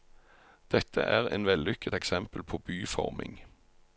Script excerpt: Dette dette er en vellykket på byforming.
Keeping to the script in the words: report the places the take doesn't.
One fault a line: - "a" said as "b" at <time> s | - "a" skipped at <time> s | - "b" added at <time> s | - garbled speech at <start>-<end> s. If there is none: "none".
- "dette" skipped at 1.0 s
- "eksempel" added at 1.9 s